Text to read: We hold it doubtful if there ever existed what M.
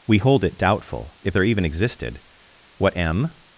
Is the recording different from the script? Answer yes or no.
yes